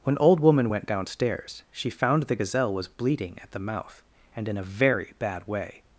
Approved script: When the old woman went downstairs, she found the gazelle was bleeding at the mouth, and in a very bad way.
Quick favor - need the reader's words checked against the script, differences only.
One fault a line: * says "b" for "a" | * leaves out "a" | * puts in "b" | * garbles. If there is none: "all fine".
* leaves out "the"